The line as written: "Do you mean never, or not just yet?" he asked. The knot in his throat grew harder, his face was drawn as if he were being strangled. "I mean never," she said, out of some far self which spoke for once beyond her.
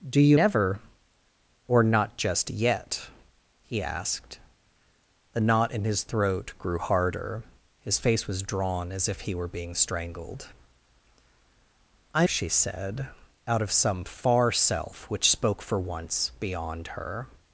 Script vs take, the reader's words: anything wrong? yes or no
yes